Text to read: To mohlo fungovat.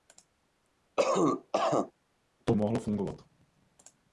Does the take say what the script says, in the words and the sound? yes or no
no